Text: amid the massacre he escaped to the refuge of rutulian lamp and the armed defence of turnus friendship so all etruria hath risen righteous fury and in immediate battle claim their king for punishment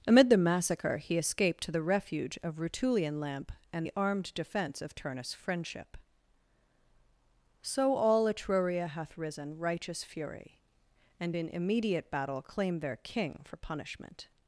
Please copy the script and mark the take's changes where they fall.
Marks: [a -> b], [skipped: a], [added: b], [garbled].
amid the massacre he escaped to the refuge of rutulian lamp and the armed defence of turnus friendship so all etruria hath risen righteous fury and in immediate battle claim their king for punishment